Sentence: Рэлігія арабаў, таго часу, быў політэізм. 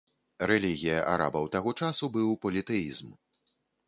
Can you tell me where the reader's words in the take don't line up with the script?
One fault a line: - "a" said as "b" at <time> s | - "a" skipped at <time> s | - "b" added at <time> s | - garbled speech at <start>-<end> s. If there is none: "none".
none